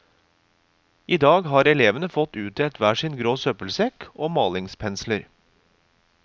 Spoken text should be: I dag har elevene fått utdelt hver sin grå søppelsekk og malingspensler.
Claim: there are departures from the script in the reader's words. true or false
false